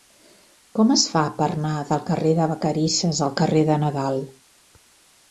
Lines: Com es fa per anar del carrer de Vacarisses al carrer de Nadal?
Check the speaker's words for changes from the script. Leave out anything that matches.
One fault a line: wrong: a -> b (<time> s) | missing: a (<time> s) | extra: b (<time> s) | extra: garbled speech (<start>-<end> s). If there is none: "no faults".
no faults